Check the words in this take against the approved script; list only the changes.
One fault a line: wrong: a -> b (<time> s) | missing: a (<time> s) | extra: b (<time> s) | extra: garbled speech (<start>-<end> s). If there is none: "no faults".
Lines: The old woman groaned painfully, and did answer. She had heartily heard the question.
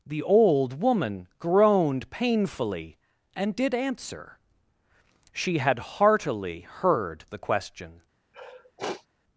no faults